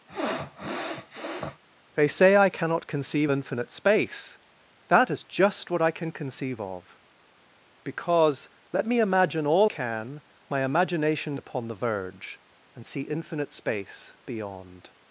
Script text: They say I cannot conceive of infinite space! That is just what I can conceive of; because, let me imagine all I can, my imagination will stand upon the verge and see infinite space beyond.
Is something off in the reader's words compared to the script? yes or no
yes